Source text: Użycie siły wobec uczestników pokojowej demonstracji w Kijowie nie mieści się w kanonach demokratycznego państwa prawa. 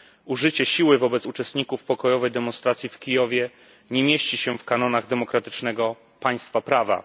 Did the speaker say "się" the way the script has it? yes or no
yes